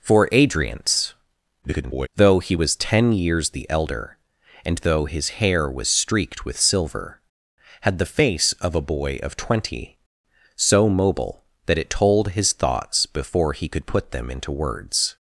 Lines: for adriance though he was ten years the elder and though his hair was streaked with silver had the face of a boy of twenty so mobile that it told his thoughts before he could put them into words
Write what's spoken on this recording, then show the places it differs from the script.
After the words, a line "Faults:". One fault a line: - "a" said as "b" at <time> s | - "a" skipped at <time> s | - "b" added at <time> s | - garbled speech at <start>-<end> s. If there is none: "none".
for adriance [garbled] though he was ten years the elder and though his hair was streaked with silver had the face of a boy of twenty so mobile that it told his thoughts before he could put them into words
Faults:
- garbled speech at 1.6-2.1 s